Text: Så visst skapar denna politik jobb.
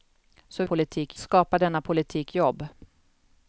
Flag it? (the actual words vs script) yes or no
yes